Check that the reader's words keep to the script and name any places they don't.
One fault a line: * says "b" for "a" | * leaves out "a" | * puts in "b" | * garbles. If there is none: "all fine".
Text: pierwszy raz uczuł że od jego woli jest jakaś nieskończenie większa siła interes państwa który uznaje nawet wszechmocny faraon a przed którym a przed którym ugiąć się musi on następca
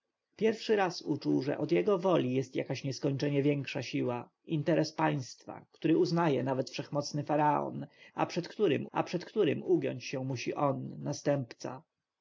all fine